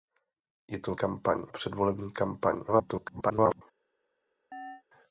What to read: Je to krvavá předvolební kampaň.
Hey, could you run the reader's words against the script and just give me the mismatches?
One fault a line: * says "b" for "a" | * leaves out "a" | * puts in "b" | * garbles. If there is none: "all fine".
* says "kampaň" for "krvavá"
* garbles